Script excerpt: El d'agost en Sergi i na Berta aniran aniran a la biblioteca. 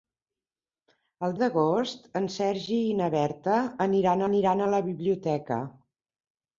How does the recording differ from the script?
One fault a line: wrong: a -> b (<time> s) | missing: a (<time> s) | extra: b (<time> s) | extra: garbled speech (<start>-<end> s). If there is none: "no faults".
no faults